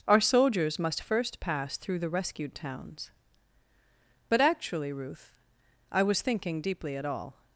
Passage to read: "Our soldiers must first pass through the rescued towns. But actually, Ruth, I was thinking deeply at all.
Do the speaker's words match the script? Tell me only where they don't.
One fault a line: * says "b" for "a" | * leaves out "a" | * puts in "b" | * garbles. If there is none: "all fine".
all fine